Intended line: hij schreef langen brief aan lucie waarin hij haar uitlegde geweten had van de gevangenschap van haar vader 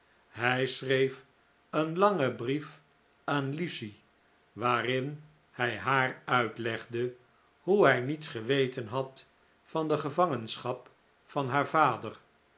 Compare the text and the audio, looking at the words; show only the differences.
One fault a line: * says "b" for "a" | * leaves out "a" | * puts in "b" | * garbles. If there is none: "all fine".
* puts in "een"
* puts in "hoe hij niets"